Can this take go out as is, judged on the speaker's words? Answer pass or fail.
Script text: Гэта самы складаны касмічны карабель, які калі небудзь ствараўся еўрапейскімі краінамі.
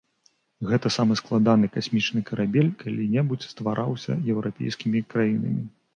fail